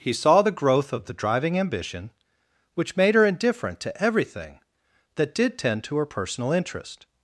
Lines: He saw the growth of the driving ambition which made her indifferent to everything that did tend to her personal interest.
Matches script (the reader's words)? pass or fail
pass